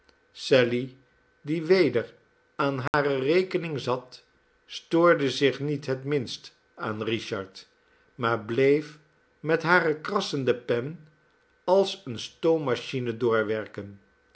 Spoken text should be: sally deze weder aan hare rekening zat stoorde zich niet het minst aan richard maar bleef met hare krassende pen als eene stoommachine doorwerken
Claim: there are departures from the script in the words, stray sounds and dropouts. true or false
true